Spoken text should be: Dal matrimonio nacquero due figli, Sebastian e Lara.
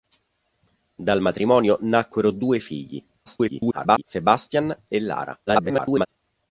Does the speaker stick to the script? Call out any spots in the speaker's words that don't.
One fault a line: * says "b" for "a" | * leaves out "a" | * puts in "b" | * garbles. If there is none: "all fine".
* garbles
* garbles